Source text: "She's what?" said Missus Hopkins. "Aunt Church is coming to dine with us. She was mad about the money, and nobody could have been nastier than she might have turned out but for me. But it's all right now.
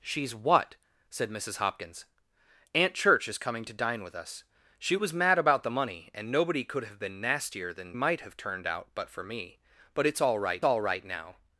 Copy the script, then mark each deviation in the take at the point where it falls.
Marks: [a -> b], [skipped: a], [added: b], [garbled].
"She's what?" said Missus Hopkins. "Aunt Church is coming to dine with us. She was mad about the money, and nobody could have been nastier than [skipped: she] might have turned out but for me. But it's all right [added: all right] now.